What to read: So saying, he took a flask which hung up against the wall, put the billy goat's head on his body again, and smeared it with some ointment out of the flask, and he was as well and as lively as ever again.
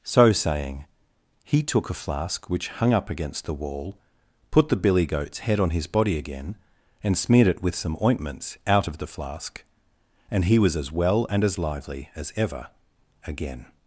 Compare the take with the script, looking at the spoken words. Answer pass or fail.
fail